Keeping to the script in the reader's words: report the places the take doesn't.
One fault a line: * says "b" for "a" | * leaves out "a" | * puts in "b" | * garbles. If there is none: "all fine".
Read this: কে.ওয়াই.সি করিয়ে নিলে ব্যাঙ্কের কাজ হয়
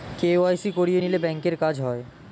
all fine